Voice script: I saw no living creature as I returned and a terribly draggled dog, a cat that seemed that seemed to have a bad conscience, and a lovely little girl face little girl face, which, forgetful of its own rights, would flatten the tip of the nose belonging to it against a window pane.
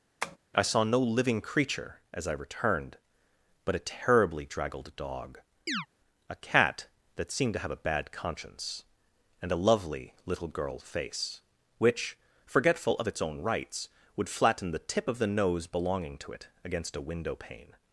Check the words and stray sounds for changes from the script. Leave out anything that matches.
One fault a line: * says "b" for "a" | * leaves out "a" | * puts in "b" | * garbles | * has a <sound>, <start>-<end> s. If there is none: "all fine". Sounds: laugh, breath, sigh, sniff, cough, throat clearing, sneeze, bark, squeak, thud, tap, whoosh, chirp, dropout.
* has a tap, 0.2-0.4 s
* says "but" for "and"
* has a chirp, 5.7-5.9 s
* leaves out "that seemed"
* leaves out "little girl face"